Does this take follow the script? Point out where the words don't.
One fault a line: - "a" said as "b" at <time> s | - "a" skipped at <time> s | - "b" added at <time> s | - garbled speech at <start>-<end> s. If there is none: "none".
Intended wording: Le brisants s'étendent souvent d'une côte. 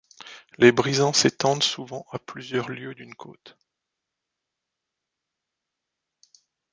- "Le" said as "Les" at 0.6 s
- "à plusieurs lieues" added at 2.1 s